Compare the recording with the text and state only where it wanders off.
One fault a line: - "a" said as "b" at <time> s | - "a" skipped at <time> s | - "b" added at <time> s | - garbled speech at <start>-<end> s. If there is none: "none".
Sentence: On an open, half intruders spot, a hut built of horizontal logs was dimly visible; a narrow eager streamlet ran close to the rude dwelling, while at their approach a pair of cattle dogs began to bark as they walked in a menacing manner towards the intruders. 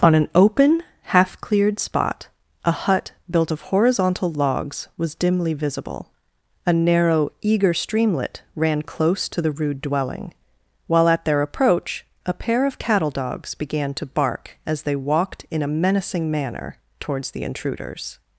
- "intruders" said as "cleared" at 1.4 s